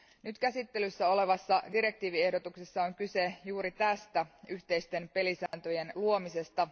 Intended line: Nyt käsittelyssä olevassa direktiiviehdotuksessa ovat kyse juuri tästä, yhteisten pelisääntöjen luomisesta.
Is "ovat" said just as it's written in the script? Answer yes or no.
no